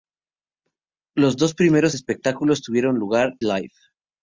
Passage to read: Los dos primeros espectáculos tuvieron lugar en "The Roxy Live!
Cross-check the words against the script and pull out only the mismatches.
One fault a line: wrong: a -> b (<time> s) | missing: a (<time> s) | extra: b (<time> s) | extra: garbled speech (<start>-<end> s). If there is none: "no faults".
missing: en The Roxy (3.4 s)